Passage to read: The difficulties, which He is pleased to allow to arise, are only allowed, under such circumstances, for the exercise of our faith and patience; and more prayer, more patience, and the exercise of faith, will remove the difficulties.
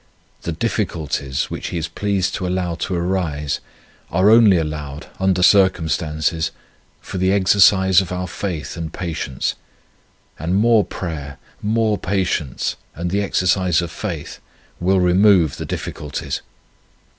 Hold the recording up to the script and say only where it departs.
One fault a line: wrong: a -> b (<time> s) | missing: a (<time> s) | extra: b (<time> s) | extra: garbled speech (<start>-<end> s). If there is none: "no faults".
missing: such (5.4 s)